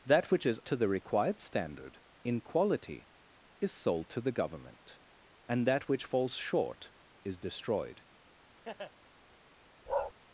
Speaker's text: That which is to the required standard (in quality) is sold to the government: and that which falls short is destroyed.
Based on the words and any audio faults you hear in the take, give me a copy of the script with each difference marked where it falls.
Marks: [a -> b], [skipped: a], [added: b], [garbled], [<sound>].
That which is to the required standard (in quality) is sold to the government: and that which falls short is destroyed. [laugh] [bark]